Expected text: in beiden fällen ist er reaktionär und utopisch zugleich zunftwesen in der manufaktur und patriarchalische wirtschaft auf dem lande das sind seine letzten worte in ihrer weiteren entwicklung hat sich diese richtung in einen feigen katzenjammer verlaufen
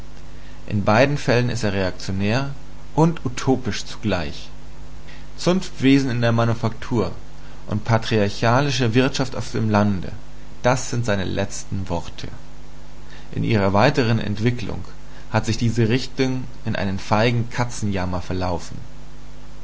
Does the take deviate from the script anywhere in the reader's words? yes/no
no